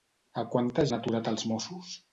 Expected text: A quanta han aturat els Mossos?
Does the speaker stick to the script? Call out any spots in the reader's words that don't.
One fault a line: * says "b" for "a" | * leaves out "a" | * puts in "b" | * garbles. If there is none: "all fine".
all fine